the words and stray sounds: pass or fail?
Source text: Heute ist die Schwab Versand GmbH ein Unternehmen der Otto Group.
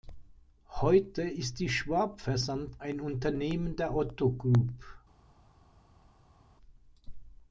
fail